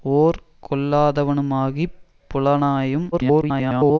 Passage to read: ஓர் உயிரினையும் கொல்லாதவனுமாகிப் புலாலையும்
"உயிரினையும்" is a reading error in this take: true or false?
true